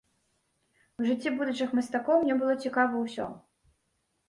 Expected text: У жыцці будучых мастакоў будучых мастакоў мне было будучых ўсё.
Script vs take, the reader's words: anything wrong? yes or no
yes